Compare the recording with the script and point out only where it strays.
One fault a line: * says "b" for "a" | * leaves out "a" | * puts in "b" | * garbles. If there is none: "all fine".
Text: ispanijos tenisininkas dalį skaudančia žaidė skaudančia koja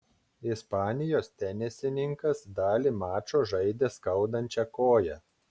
* says "mačo" for "skaudančia"